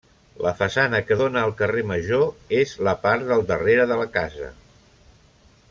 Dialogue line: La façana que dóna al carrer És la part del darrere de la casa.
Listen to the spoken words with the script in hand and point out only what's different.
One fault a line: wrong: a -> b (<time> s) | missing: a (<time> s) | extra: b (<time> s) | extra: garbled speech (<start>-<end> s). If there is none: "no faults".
extra: Major (1.9 s)